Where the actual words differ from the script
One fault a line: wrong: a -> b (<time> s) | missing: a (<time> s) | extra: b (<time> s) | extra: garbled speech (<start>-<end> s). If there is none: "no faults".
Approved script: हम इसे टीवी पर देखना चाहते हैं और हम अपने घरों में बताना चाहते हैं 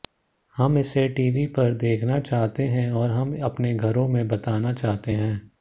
no faults